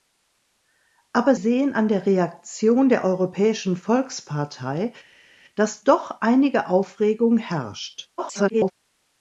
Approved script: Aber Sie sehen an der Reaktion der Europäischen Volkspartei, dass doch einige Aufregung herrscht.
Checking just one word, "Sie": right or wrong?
wrong